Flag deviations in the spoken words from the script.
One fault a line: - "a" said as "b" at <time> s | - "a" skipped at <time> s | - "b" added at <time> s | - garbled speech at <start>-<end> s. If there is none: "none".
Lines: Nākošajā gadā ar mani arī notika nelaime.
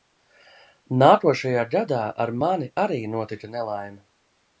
none